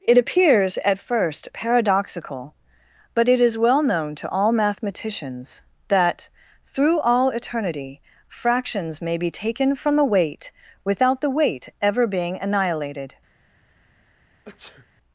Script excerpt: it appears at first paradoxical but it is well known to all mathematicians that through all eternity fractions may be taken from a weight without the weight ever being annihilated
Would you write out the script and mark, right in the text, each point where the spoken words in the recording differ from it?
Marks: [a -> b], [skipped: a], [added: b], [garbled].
it appears at first paradoxical but it is well known to all mathematicians that through all eternity fractions may be taken from [a -> the] weight without the weight ever being annihilated